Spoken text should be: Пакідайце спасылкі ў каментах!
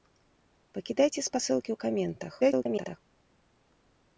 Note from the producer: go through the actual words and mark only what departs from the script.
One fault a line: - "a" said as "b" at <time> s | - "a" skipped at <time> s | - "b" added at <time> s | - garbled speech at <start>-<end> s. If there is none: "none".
- garbled speech at 2.4-3.0 s